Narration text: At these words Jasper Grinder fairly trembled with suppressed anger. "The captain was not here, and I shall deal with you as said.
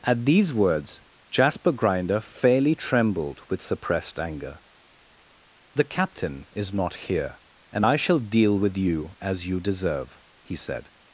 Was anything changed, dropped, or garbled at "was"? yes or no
yes